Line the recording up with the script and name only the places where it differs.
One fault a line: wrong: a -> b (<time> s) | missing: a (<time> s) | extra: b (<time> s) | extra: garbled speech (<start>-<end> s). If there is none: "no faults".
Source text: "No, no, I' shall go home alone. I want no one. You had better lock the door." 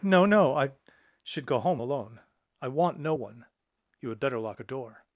wrong: shall -> should (1.2 s)
wrong: the -> a (4.6 s)